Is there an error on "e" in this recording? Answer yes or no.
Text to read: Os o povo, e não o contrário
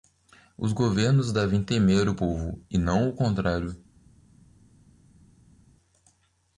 no